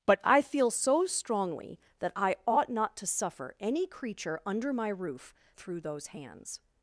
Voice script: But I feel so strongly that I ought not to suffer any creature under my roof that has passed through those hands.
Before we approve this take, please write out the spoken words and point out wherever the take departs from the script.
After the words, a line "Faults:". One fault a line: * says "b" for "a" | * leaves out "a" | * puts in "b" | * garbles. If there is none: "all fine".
But I feel so strongly that I ought not to suffer any creature under my roof through those hands.
Faults:
* leaves out "that has passed"